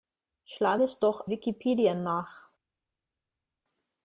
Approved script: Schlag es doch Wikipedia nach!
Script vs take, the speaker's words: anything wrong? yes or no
no